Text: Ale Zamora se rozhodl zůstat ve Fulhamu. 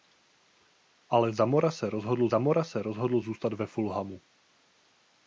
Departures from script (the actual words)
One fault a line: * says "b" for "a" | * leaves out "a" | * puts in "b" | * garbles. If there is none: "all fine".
* puts in "Zamora se rozhodl"